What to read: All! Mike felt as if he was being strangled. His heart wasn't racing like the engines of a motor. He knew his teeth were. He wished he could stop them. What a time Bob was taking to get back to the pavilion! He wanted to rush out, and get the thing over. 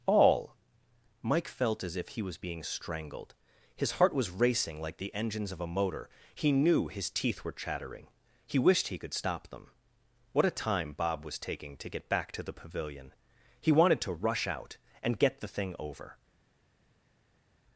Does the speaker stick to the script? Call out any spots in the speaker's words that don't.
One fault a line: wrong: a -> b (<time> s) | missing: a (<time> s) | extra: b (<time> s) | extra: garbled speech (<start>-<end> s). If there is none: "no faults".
wrong: wasn't -> was (4.2 s)
extra: chattering (7.5 s)